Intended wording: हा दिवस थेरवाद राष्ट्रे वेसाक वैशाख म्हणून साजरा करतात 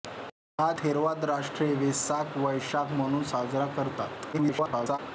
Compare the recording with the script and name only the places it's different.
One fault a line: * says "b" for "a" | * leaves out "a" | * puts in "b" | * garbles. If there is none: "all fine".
* leaves out "दिवस"
* garbles